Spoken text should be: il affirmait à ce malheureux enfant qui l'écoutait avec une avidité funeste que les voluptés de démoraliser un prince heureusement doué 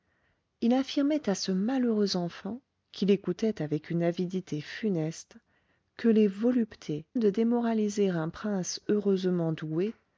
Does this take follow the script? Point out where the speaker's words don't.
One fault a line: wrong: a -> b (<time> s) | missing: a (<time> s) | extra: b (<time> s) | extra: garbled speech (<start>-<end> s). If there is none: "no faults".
no faults